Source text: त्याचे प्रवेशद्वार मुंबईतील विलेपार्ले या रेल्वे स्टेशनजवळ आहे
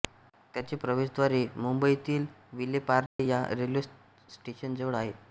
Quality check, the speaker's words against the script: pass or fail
pass